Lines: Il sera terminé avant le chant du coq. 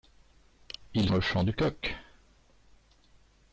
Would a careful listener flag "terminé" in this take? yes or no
yes